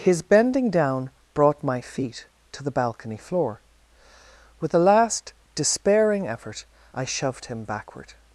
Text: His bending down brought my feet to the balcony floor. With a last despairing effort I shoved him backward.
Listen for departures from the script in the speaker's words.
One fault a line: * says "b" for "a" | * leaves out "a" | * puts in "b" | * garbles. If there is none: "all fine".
all fine